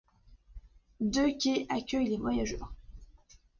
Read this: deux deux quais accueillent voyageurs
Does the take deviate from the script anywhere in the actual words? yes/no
yes